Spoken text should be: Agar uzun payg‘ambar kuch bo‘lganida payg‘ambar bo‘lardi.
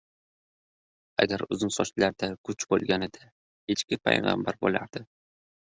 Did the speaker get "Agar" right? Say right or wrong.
right